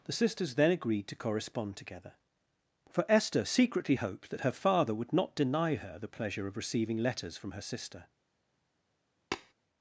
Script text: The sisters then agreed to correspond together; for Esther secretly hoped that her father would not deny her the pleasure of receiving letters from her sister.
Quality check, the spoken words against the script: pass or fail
pass